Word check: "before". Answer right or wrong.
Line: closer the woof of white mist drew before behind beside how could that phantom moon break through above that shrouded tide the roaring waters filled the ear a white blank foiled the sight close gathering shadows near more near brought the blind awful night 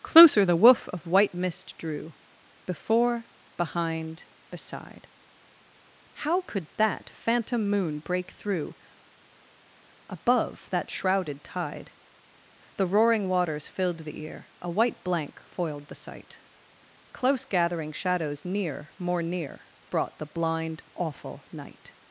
right